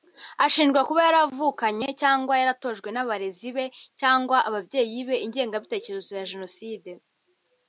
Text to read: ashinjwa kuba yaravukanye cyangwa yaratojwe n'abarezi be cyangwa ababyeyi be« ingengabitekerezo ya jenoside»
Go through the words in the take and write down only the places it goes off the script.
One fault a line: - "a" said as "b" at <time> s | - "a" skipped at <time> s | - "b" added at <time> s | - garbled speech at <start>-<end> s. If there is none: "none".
none